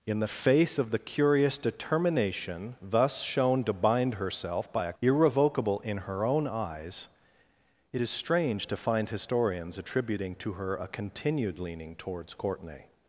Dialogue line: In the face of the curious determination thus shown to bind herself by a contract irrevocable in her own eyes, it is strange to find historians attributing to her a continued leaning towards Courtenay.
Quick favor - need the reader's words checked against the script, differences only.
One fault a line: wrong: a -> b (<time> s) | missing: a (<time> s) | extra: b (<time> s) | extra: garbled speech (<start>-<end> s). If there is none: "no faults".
missing: contract (4.9 s)